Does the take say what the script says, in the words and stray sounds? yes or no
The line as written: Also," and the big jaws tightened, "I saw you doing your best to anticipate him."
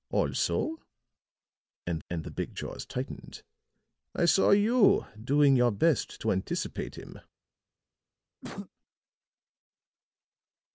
no